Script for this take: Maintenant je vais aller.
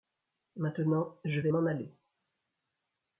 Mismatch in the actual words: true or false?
true